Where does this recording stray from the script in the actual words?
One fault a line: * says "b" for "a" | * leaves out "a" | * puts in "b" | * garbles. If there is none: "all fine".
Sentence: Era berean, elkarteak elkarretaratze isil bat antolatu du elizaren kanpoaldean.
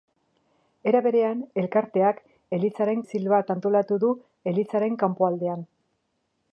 * says "elizaren" for "elkarretaratze"